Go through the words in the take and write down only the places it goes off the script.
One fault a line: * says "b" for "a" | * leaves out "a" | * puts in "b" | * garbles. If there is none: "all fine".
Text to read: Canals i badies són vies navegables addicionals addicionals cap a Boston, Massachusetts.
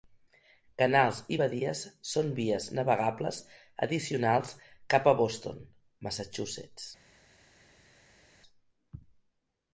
* leaves out "addicionals"